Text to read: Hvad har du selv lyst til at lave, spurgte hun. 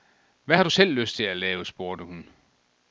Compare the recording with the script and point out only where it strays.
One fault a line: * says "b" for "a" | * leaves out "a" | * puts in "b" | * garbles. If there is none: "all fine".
all fine